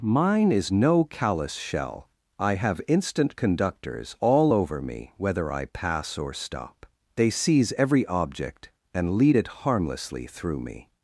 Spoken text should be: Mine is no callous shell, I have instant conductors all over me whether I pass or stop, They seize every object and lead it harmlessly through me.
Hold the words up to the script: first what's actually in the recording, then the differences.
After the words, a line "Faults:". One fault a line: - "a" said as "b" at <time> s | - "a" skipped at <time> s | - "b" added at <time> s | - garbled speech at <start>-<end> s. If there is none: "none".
Mine is no callous shell, I have instant conductors all over me whether I pass or stop, They seize every object and lead it harmlessly through me.
Faults:
none